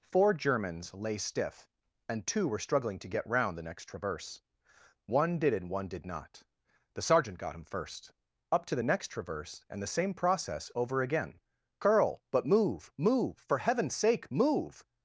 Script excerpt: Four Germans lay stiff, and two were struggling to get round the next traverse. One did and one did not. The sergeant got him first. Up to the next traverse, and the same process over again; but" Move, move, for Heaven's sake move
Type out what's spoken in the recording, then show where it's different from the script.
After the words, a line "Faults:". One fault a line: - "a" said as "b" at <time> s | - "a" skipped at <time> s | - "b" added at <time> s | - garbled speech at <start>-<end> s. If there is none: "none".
Four Germans lay stiff, and two were struggling to get round the next traverse. One did and one did not. The sergeant got him first. Up to the next traverse, and the same process over again; curl but" Move, move, for Heaven's sake move
Faults:
- "curl" added at 11.8 s